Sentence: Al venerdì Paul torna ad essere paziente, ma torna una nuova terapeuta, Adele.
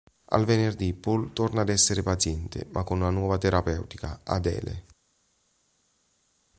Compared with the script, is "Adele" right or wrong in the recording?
right